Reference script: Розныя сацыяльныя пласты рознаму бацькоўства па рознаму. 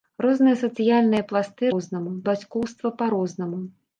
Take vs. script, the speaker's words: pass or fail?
pass